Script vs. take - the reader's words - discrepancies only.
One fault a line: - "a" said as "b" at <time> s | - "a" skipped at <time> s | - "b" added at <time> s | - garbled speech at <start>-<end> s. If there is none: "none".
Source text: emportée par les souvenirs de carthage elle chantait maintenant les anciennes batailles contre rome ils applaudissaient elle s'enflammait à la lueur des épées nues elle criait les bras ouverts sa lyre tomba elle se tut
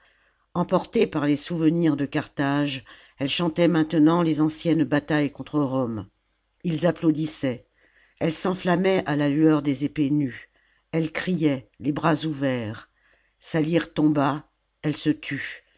none